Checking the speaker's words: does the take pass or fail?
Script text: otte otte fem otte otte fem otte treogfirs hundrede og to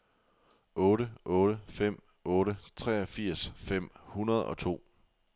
fail